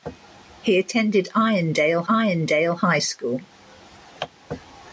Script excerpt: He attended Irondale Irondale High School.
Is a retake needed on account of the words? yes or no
no